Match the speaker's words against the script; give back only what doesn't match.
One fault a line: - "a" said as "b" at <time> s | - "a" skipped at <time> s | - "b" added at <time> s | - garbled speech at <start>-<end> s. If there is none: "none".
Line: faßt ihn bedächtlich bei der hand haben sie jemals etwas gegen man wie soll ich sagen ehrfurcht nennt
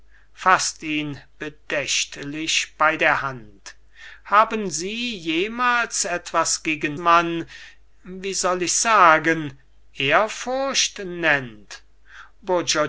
none